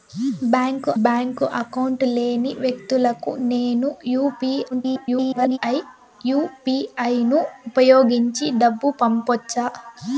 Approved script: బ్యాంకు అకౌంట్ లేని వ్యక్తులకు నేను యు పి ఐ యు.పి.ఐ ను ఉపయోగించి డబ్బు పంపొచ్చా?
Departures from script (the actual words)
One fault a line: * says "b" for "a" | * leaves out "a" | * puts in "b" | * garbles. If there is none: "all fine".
* puts in "బ్యాంకు"
* garbles